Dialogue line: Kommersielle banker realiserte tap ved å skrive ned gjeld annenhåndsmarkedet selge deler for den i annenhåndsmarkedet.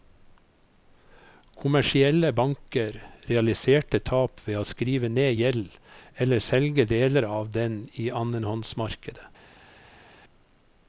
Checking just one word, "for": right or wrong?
wrong